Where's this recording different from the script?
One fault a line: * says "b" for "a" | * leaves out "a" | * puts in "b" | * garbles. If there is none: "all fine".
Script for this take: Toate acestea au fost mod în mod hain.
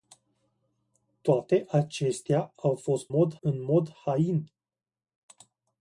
all fine